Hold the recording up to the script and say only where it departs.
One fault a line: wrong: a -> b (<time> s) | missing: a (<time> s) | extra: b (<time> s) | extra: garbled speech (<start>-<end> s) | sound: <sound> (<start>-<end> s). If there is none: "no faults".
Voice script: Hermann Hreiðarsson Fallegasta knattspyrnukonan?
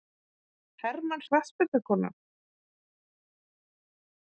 missing: Hreiðarsson Fallegasta (1.2 s)